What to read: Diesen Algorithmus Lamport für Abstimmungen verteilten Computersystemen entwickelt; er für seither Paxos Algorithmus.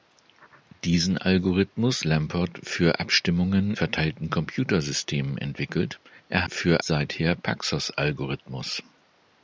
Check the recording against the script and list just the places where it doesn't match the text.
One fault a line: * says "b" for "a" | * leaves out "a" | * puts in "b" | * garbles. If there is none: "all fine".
all fine